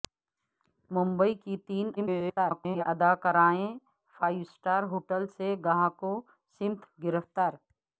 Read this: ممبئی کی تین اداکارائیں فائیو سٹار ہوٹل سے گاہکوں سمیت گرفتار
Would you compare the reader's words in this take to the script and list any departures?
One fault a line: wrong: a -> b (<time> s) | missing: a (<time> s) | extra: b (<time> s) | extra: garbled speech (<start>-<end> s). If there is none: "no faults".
extra: garbled speech (2.0-2.8 s)